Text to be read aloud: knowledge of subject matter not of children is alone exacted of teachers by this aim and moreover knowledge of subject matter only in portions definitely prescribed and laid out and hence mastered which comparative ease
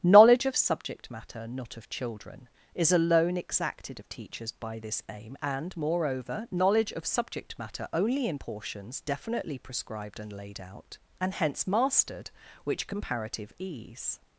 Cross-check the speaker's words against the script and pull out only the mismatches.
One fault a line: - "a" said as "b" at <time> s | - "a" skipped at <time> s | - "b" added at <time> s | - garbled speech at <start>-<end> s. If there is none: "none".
none